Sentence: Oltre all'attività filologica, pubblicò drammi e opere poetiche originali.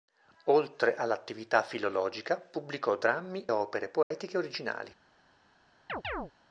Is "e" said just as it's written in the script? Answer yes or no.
no